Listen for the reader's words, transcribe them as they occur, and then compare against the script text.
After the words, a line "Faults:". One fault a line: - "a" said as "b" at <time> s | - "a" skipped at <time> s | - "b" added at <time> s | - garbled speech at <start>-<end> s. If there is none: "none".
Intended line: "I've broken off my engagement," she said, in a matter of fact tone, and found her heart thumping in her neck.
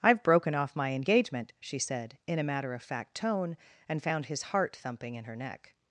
"I've broken off my engagement," she said, in a matter of fact tone, and found his heart thumping in her neck.
Faults:
- "her" said as "his" at 4.2 s